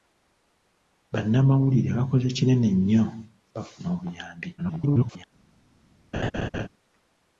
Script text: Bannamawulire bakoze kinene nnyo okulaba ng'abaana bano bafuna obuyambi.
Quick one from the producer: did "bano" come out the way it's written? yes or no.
no